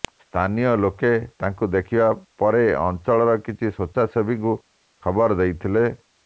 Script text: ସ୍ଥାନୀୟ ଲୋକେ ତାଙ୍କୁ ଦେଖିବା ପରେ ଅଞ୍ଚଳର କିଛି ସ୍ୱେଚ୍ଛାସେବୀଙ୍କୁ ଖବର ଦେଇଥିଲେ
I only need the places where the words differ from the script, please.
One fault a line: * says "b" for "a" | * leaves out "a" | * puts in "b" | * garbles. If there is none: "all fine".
all fine